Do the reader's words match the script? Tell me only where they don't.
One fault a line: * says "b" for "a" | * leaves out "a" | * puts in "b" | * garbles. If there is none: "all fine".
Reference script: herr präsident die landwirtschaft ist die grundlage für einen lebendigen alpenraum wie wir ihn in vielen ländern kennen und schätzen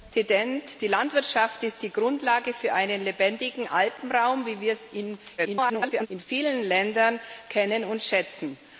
* garbles